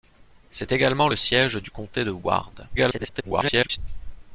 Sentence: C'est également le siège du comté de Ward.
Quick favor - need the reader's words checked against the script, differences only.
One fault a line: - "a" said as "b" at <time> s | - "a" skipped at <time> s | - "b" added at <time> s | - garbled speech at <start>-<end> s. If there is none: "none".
- garbled speech at 2.8-3.8 s